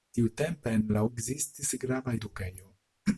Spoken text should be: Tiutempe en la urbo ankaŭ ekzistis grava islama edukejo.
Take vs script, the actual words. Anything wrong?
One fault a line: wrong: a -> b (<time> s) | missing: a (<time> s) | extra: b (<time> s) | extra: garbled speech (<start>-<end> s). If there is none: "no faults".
missing: urbo ankaŭ (1.0 s)
missing: islama (2.2 s)